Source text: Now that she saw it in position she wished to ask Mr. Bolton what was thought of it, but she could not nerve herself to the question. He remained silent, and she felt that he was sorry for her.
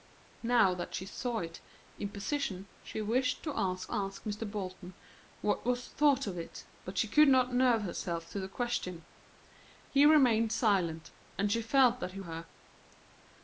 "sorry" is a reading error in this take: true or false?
true